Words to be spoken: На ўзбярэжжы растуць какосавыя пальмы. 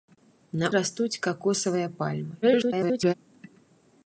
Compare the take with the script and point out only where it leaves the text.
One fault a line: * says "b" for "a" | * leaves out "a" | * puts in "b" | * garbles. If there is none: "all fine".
* leaves out "ўзбярэжжы"
* garbles